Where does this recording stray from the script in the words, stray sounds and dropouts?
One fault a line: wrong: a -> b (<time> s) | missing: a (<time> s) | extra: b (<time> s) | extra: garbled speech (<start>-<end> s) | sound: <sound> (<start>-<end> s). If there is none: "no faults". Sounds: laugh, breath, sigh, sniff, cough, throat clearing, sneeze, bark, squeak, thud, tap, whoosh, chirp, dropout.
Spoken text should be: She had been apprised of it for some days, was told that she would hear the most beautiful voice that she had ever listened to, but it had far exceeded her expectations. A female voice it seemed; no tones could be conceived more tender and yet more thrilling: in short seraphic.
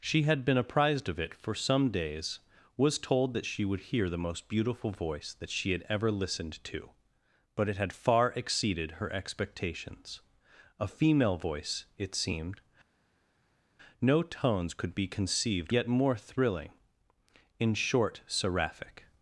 missing: more tender and (15.7 s)